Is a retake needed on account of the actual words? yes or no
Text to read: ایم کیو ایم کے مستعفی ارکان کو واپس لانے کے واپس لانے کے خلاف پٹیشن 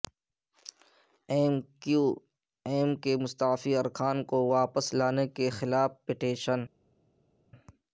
yes